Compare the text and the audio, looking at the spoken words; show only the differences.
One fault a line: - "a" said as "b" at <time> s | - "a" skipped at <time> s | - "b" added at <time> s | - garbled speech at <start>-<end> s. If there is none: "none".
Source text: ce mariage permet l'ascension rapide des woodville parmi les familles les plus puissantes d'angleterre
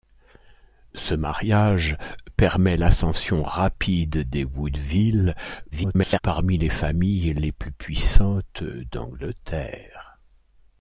- garbled speech at 5.7-6.2 s